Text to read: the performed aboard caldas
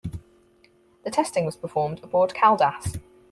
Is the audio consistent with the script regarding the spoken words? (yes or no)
no